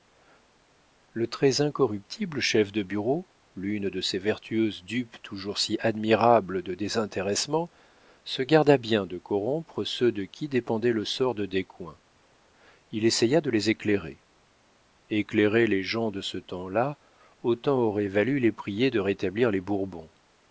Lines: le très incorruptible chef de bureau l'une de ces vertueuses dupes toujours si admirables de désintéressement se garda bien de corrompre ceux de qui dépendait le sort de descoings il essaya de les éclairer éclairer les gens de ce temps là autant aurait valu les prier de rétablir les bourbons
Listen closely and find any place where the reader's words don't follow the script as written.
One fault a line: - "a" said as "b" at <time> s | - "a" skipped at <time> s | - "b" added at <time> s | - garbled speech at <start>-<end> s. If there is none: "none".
none